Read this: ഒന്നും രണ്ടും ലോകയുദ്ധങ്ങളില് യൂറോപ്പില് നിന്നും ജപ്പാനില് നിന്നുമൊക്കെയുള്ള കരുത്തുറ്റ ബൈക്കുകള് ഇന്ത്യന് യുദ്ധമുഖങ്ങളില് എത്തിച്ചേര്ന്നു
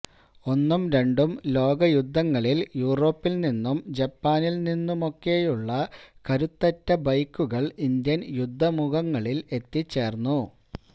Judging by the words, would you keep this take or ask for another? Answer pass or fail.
pass